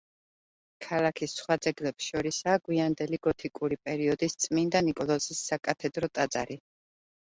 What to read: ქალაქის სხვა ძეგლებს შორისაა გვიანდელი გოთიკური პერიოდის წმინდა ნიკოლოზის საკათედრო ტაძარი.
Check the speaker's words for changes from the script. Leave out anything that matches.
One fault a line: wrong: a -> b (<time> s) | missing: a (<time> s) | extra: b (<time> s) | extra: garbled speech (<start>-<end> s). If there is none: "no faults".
no faults